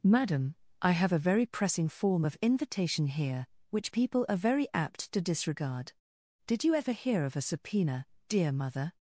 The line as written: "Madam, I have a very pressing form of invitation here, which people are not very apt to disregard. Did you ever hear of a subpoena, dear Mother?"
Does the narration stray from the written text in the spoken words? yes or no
yes